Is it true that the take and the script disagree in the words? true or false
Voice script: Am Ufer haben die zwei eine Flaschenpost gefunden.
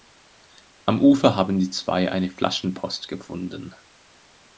false